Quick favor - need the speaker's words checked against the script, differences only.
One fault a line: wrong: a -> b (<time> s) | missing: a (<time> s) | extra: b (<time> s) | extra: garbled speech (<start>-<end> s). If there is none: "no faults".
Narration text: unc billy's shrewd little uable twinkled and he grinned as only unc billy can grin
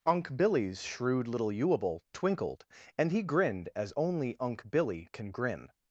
no faults